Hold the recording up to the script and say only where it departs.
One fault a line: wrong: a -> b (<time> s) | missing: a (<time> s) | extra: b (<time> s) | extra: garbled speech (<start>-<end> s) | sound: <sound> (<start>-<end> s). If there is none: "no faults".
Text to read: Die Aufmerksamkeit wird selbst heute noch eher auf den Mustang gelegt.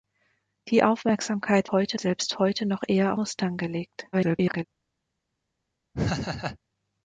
wrong: wird -> heute (1.7 s)
missing: auf den (3.1 s)
extra: garbled speech (4.1-4.6 s)
sound: laugh (5.9-6.6 s)